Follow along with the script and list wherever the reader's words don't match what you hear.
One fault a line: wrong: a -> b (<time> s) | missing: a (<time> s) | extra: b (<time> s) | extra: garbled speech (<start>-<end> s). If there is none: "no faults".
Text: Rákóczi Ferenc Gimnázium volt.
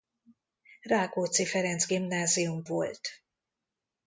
no faults